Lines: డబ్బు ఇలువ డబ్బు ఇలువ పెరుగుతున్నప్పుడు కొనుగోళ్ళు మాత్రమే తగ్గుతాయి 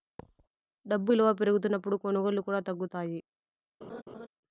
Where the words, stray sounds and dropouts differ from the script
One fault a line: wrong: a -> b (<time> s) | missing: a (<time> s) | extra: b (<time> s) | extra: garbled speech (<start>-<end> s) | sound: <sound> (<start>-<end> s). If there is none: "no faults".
sound: thud (0.2-0.5 s)
missing: డబ్బు ఇలువ (1.3 s)
wrong: మాత్రమే -> కూడా (2.4 s)
sound: laugh (3.8-4.3 s)